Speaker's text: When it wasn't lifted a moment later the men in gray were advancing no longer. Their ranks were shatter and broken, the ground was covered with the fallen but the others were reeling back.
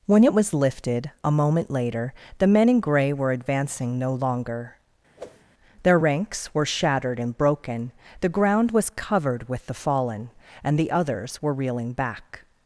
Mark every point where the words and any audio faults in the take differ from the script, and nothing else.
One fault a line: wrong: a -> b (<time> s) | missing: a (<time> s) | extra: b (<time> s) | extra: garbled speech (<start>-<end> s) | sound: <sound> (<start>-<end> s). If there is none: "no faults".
wrong: wasn't -> was (0.3 s)
sound: whoosh (5.2-5.4 s)
wrong: shatter -> shattered (6.7 s)
wrong: but -> and (10.6 s)